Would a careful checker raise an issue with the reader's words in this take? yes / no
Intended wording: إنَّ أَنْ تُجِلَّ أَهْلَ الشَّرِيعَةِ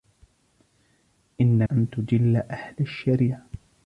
no